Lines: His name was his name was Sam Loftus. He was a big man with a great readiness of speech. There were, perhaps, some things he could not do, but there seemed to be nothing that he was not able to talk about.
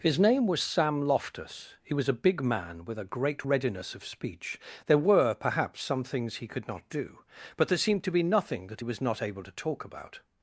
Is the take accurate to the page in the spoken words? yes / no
no